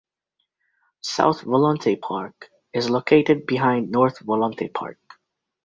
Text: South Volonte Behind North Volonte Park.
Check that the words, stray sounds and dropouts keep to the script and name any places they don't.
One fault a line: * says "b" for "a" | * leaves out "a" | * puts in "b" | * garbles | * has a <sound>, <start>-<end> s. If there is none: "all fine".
* puts in "Park is located"